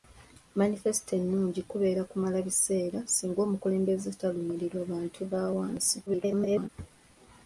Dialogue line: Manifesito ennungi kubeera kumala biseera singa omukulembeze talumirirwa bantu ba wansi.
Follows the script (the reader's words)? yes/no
no